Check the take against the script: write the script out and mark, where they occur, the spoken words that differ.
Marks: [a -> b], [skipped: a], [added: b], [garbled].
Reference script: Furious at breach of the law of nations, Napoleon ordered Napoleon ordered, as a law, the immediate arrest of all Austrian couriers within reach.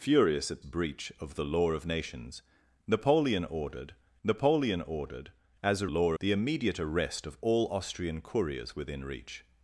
Furious at breach of the law of nations, Napoleon ordered Napoleon ordered, as a law, the immediate arrest of all Austrian couriers within reach.